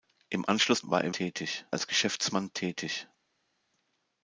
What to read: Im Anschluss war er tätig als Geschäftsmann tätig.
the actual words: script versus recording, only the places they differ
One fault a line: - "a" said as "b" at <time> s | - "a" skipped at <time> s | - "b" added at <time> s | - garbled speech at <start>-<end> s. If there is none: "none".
none